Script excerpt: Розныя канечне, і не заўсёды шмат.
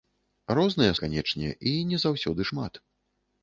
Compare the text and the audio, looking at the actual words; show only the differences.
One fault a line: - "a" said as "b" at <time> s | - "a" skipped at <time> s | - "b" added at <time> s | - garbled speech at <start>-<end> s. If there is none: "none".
none